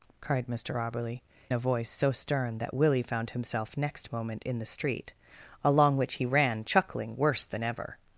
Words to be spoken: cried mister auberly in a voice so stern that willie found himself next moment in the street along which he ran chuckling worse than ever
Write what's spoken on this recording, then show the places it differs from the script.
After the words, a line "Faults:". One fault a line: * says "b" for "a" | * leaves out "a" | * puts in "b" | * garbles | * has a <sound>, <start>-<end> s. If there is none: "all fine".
cried mister auberly a voice so stern that willie found himself next moment in the street along which he ran chuckling worse than ever
Faults:
* leaves out "in"